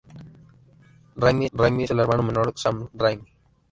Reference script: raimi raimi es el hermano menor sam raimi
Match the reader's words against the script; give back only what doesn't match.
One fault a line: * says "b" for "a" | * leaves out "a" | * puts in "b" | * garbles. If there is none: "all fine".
all fine